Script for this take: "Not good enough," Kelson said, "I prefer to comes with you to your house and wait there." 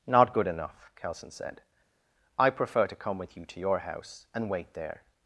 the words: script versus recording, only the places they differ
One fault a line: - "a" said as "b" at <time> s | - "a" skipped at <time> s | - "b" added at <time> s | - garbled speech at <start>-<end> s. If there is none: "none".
- "comes" said as "come" at 3.0 s